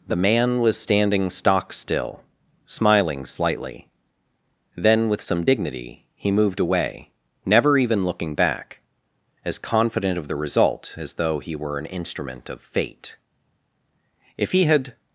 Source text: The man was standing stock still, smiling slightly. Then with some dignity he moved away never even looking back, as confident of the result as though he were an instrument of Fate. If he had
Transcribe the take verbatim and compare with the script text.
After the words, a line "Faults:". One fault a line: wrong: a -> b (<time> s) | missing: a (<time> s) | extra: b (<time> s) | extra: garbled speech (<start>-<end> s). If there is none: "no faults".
The man was standing stock still, smiling slightly. Then with some dignity he moved away never even looking back, as confident of the result as though he were an instrument of Fate. If he had
Faults:
no faults